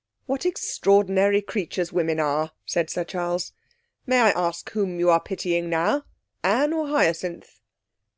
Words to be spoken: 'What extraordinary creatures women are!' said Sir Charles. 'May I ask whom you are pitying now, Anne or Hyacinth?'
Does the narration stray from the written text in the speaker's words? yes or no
no